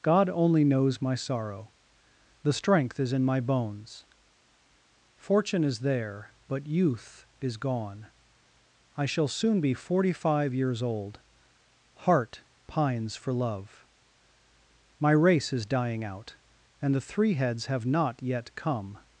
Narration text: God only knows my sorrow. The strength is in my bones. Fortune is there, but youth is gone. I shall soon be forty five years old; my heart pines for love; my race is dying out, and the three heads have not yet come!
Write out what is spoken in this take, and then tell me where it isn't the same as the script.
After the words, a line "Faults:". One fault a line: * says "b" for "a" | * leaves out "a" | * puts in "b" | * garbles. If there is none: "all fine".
God only knows my sorrow. The strength is in my bones. Fortune is there, but youth is gone. I shall soon be forty five years old; heart pines for love; my race is dying out, and the three heads have not yet come!
Faults:
* leaves out "my"